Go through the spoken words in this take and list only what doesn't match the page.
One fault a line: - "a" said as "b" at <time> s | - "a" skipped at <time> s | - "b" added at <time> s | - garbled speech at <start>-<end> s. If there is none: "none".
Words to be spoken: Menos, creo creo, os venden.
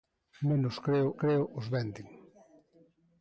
none